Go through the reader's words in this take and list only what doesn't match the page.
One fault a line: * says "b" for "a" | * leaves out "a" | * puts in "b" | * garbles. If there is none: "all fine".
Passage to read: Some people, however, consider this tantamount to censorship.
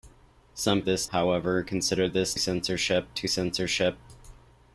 * says "this" for "people"
* says "censorship" for "tantamount"